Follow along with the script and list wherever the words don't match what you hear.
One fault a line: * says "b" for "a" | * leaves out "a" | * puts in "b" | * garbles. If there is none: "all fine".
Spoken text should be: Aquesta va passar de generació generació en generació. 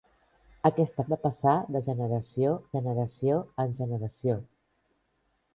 all fine